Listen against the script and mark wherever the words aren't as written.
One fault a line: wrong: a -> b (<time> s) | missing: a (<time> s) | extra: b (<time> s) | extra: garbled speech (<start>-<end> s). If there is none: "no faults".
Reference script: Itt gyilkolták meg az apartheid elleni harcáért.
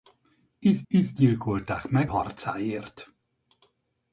extra: itt (0.9 s)
missing: az apartheid elleni (2.1 s)